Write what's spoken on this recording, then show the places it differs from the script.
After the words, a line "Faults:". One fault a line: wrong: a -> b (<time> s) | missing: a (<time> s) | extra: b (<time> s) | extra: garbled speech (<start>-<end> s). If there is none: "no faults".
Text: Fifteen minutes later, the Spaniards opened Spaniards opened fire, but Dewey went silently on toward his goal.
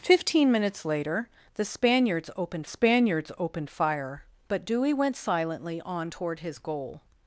Fifteen minutes later, the Spaniards opened Spaniards opened fire, but Dewey went silently on toward his goal.
Faults:
no faults